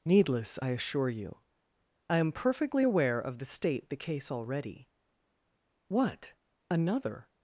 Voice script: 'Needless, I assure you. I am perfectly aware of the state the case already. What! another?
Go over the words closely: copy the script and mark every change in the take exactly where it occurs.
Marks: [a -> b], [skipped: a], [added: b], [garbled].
'Needless, I assure you. I am perfectly aware of the state the case already. What! another?